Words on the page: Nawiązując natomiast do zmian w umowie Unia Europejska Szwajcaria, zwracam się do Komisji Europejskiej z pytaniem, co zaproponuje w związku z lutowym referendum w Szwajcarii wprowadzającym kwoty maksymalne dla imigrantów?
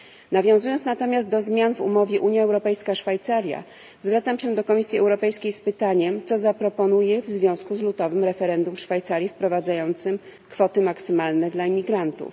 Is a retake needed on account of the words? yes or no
no